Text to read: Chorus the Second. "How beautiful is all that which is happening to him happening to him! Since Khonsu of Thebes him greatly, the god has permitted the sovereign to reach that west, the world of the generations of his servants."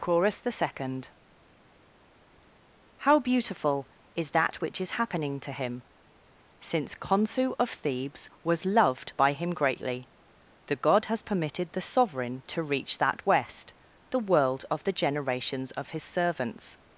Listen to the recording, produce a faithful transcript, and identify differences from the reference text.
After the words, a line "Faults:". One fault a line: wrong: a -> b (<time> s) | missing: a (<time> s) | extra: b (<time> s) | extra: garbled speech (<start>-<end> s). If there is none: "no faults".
Chorus the Second. "How beautiful is that which is happening to him! Since Khonsu of Thebes was loved by him greatly, the god has permitted the sovereign to reach that west, the world of the generations of his servants."
Faults:
missing: all (4.3 s)
missing: happening to him (5.8 s)
extra: was loved by (8.4 s)